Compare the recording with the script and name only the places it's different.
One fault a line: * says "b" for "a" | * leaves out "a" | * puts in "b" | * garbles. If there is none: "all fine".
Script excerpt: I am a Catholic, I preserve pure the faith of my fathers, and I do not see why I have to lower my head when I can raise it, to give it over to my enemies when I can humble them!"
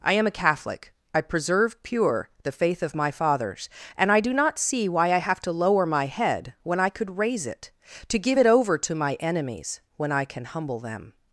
* says "could" for "can"